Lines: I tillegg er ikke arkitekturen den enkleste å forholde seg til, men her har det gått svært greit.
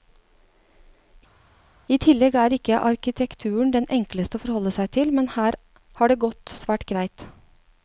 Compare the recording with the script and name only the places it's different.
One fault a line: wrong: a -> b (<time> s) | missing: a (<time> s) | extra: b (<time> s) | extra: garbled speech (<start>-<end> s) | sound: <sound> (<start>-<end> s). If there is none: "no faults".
no faults